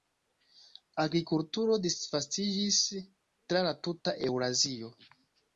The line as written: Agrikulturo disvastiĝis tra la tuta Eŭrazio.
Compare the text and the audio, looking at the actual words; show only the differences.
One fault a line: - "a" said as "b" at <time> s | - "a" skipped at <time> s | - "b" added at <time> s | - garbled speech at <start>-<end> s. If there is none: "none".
none